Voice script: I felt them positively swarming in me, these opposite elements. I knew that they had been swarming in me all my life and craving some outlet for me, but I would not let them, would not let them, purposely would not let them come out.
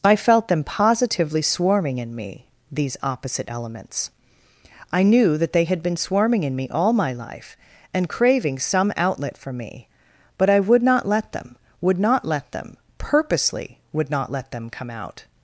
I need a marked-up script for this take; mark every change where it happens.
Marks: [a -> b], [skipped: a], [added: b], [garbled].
I felt them positively swarming in me, these opposite elements. I knew that they had been swarming in me all my life and craving some outlet for me, but I would not let them, would not let them, purposely would not let them come out.